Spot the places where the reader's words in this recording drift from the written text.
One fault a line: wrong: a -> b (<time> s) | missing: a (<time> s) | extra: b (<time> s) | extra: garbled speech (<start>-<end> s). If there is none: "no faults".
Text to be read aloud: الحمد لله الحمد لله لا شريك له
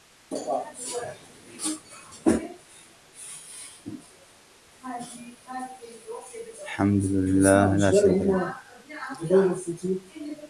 missing: الحمد لله (7.8 s)